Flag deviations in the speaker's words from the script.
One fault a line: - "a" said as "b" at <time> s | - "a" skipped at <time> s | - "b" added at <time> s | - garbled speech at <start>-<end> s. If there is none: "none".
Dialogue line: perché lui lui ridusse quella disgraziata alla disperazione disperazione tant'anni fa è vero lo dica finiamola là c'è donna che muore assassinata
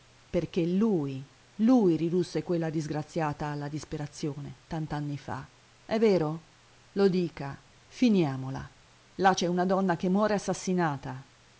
- "disperazione" skipped at 4.6 s
- "una" added at 9.5 s